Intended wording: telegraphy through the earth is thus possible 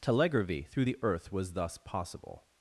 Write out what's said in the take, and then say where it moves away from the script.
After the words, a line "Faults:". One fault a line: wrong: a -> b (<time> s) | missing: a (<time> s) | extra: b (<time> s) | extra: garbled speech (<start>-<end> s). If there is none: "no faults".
telegraphy through the earth was thus possible
Faults:
wrong: is -> was (1.3 s)